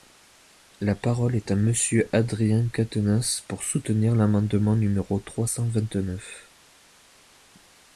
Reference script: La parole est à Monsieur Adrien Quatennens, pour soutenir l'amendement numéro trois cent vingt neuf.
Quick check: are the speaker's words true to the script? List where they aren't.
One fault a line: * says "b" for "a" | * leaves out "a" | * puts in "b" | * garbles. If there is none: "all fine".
all fine